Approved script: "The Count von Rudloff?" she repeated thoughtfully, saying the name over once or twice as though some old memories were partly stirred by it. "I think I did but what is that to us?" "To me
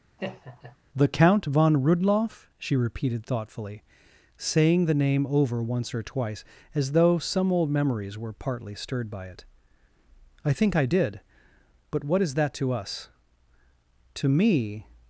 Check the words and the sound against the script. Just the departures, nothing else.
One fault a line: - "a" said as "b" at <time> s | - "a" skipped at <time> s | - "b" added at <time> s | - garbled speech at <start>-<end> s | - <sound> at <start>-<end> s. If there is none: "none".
- laugh at 0.2-0.8 s